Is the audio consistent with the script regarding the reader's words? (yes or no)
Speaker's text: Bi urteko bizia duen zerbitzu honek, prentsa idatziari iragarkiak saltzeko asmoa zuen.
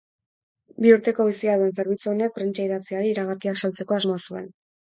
yes